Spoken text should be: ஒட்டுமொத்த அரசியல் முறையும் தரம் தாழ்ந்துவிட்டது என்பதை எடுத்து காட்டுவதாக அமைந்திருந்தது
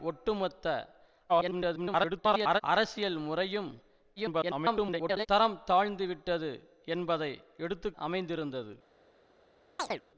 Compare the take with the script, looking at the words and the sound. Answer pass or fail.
fail